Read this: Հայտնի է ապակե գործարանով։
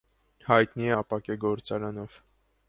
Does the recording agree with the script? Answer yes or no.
yes